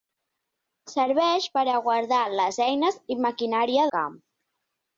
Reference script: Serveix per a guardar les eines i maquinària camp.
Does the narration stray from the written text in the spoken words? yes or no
no